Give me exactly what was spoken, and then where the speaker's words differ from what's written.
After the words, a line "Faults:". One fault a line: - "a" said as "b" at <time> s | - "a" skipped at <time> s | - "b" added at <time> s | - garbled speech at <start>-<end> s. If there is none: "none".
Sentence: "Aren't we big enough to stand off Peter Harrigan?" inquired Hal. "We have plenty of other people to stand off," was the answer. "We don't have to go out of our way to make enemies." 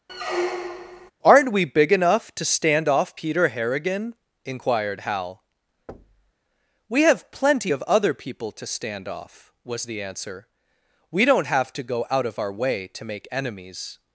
"Aren't we big enough to stand off Peter Harrigan?" inquired Hal. "We have plenty of other people to stand off," was the answer. "We don't have to go out of our way to make enemies."
Faults:
none